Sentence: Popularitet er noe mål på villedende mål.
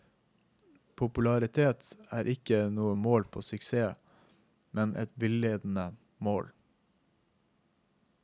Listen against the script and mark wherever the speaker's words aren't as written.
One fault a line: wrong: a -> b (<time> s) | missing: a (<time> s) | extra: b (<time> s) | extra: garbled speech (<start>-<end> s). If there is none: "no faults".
extra: ikke (2.3 s)
extra: suksess men et (3.4 s)